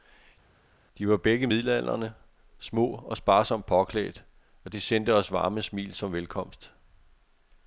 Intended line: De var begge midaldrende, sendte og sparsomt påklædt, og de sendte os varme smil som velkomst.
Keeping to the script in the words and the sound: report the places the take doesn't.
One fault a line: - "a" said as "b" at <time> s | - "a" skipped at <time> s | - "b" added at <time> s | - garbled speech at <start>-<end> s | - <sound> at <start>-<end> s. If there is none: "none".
- "sendte" said as "små" at 2.6 s